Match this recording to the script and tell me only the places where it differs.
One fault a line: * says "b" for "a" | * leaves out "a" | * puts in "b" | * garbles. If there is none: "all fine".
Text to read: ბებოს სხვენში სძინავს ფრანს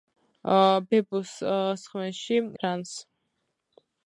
* leaves out "სძინავს"